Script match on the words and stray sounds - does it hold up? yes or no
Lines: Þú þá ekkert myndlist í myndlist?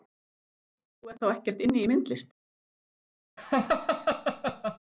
no